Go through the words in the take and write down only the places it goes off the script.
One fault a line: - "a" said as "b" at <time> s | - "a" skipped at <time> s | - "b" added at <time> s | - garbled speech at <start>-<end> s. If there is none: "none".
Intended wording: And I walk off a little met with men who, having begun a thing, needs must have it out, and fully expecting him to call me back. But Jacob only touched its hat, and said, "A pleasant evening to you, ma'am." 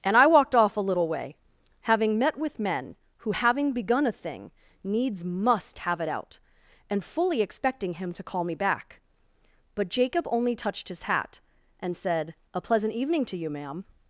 - "walk" said as "walked" at 0.3 s
- "way having" added at 1.1 s
- "its" said as "his" at 10.9 s